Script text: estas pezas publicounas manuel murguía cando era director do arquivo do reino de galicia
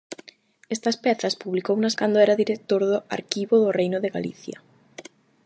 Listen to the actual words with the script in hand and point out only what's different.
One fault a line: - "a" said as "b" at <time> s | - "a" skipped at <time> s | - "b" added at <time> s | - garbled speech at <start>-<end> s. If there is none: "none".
- "manuel murguía" skipped at 2.0 s